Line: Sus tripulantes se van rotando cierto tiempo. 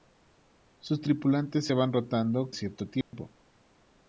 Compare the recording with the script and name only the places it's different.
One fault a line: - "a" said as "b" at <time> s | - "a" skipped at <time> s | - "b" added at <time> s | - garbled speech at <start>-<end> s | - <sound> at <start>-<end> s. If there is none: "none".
- dropout at 3.0-3.1 s